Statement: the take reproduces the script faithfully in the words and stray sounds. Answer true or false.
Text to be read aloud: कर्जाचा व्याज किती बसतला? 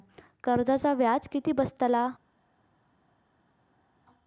true